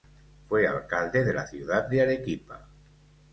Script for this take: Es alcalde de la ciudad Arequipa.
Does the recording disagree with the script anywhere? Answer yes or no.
yes